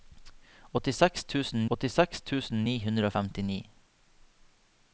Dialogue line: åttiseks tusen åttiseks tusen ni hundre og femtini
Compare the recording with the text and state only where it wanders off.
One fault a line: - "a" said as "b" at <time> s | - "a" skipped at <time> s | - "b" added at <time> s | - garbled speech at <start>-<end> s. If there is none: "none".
none